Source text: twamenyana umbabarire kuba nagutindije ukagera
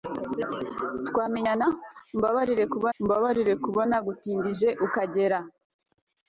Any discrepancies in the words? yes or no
yes